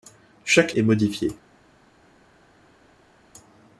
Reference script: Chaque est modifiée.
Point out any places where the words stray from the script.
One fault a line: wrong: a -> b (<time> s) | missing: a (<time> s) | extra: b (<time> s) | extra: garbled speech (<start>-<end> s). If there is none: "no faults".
no faults